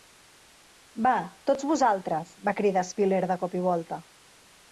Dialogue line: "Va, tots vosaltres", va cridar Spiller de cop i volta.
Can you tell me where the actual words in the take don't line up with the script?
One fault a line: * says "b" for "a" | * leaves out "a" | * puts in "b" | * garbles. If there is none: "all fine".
all fine